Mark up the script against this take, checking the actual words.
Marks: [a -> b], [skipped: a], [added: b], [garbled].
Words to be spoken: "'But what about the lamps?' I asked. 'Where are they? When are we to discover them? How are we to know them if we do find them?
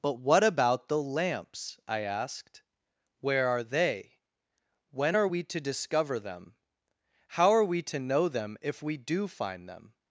"'But what about the lamps?' I asked. 'Where are they? When are we to discover them? How are we to know them if we do find them?